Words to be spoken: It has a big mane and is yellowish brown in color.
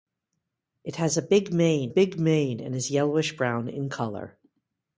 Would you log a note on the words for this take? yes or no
yes